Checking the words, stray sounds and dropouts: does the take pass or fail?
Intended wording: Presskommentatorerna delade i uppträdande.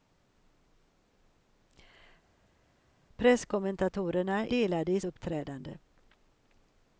pass